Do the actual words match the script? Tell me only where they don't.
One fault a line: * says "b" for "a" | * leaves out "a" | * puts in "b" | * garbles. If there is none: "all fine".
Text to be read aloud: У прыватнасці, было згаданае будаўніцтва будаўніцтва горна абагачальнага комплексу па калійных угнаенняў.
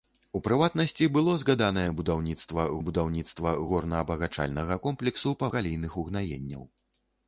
all fine